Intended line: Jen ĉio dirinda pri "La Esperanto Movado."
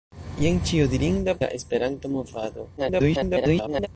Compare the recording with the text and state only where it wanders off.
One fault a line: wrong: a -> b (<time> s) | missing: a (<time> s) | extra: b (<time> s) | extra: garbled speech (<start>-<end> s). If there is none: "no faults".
missing: pri (1.4 s)
extra: garbled speech (2.8-3.9 s)